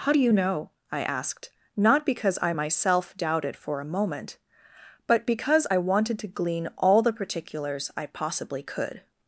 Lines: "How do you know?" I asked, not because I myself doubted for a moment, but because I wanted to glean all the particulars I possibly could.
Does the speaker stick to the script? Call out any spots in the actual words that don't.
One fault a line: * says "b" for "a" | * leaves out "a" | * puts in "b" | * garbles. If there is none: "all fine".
all fine